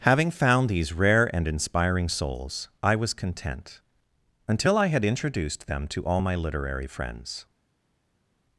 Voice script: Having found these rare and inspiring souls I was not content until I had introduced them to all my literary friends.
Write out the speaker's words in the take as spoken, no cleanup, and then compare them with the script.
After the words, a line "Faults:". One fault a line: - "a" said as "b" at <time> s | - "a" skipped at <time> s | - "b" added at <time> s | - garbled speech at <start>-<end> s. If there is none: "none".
Having found these rare and inspiring souls I was content until I had introduced them to all my literary friends.
Faults:
- "not" skipped at 3.2 s